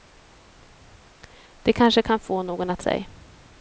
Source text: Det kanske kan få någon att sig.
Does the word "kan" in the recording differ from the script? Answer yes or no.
no